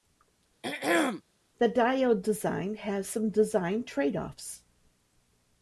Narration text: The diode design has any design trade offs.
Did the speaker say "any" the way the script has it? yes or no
no